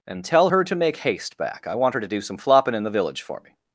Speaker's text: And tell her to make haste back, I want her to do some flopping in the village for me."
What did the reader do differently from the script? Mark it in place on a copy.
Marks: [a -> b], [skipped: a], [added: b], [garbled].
And tell her to make haste back, I want her to do some flopping in the village for me."